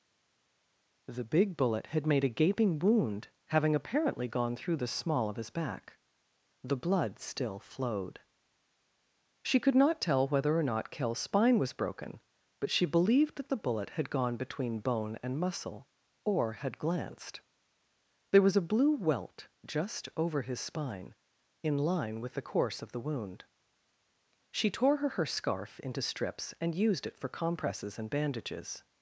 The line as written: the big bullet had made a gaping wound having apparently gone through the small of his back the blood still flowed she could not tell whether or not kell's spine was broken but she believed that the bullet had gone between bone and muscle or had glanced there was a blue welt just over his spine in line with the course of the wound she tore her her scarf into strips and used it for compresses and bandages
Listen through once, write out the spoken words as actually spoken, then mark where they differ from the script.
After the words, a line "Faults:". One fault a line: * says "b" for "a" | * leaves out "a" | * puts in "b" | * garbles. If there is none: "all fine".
the big bullet had made a gaping wound having apparently gone through the small of his back the blood still flowed she could not tell whether or not kell's spine was broken but she believed that the bullet had gone between bone and muscle or had glanced there was a blue welt just over his spine in line with the course of the wound she tore her her scarf into strips and used it for compresses and bandages
Faults:
all fine